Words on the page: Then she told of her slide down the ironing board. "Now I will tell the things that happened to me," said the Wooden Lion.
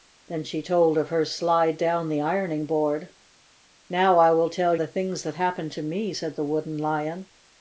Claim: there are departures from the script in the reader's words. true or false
false